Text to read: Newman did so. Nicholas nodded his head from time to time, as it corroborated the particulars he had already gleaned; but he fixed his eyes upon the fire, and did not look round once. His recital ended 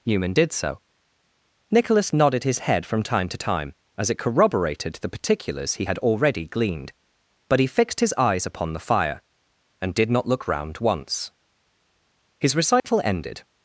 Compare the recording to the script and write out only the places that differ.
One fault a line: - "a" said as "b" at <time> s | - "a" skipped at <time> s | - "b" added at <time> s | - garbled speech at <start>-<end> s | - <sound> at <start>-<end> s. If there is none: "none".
- dropout at 12.8-12.8 s